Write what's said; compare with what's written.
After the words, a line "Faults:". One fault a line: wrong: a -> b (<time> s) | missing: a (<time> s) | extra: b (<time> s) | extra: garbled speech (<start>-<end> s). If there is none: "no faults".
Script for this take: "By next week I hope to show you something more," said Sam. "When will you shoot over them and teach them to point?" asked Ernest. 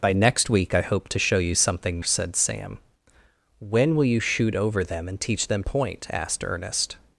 "By next week I hope to show you something," said Sam. "When will you shoot over them and teach them point?" asked Ernest.
Faults:
missing: more (2.0 s)
missing: to (5.6 s)